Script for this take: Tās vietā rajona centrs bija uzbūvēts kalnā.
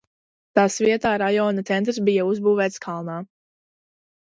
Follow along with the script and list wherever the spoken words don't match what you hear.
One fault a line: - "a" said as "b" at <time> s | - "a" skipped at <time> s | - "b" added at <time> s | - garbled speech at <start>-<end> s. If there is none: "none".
none